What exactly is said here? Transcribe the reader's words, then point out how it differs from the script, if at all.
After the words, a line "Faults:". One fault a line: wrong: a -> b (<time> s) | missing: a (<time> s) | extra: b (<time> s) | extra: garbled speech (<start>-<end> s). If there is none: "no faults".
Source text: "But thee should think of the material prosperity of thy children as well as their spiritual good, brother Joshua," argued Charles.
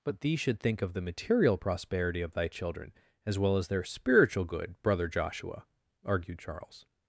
"But thee should think of the material prosperity of thy children as well as their spiritual good, brother Joshua," argued Charles.
Faults:
no faults